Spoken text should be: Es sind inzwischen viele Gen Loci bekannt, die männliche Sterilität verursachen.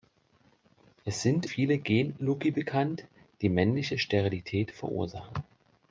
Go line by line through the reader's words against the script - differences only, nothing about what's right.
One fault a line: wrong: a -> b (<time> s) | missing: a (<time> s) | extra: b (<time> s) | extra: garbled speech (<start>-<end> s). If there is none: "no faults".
missing: inzwischen (1.4 s)